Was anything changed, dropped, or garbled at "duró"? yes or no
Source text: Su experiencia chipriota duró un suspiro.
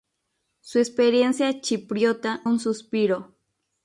yes